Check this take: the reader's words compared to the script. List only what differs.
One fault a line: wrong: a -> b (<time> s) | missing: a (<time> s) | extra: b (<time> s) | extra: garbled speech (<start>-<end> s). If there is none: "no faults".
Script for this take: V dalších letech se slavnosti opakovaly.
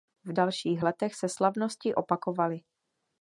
no faults